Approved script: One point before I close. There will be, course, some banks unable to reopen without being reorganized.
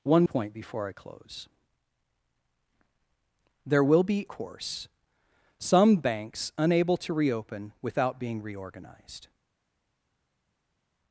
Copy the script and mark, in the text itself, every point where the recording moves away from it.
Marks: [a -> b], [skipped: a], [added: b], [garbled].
One point before I close. There will be, course, some banks unable to reopen without being reorganized.